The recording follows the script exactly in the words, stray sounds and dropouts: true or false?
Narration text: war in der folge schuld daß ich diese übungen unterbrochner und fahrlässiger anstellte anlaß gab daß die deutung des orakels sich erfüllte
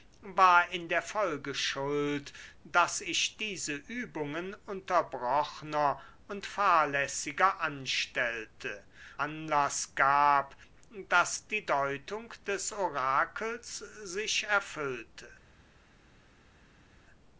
true